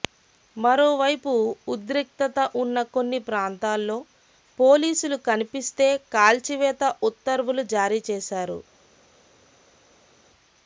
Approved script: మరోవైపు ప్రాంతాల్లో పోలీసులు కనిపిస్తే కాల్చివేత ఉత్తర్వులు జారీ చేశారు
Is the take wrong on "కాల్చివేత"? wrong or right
right